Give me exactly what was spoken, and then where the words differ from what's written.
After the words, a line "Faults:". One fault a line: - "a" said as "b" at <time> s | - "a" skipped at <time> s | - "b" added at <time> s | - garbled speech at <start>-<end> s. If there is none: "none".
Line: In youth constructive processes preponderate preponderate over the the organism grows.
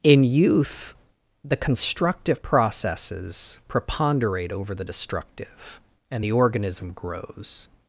In youth the constructive processes preponderate over the destructive and the organism grows.
Faults:
- "the" added at 1.4 s
- "preponderate" skipped at 4.5 s
- "destructive and" added at 4.8 s